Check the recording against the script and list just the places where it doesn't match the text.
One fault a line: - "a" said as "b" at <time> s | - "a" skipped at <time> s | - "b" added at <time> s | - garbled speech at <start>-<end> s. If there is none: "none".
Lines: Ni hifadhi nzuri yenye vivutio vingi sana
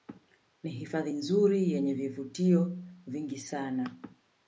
none